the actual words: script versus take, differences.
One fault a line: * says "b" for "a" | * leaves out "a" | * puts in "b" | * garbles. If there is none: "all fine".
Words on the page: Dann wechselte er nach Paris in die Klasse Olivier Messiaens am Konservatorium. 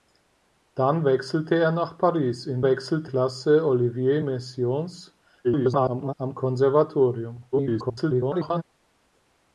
* says "wechselte" for "die"
* garbles
* garbles